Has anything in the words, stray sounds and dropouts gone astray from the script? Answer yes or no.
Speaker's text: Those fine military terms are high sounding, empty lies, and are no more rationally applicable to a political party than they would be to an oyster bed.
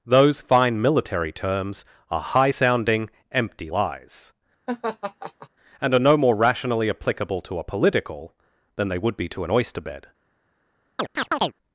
yes